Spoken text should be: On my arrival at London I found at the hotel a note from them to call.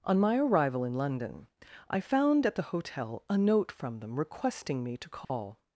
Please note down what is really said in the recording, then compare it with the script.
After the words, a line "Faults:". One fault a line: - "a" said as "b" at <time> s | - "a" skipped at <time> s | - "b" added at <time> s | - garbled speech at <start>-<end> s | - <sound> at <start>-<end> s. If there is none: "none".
On my arrival in London I found at the hotel a note from them requesting me to call.
Faults:
- "at" said as "in" at 0.8 s
- "requesting me" added at 4.2 s
- dropout at 5.2-5.3 s